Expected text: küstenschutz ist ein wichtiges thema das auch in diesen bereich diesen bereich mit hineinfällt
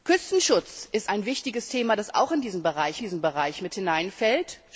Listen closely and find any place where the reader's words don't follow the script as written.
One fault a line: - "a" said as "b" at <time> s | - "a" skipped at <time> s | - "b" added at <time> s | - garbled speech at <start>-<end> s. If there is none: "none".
none